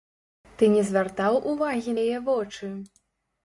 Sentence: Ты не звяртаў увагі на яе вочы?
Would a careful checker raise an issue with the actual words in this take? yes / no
yes